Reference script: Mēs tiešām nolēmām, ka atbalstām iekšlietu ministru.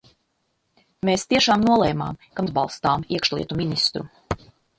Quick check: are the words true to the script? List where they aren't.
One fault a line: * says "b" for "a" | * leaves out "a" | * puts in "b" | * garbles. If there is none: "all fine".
all fine